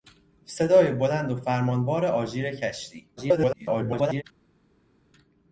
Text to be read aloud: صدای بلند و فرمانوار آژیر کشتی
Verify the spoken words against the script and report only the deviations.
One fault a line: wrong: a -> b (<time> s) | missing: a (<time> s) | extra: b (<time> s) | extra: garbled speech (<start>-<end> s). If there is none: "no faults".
extra: garbled speech (3.2-4.2 s)